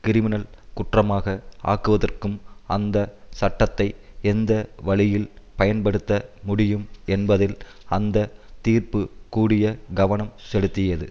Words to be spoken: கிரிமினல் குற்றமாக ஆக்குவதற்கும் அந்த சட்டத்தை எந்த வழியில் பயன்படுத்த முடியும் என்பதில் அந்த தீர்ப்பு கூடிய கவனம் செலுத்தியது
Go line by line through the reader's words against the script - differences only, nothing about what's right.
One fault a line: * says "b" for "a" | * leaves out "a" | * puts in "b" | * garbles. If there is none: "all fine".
all fine